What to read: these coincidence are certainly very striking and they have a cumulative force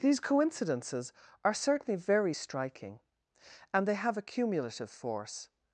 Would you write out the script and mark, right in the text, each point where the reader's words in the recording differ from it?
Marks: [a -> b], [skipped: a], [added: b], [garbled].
these [coincidence -> coincidences] are certainly very striking and they have a cumulative force